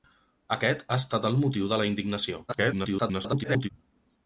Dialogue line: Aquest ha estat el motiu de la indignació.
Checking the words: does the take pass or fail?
fail